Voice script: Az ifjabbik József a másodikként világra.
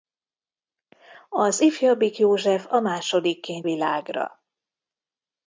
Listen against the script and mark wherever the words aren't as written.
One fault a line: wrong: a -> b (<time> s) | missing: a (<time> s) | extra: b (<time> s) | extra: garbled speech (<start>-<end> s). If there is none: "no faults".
no faults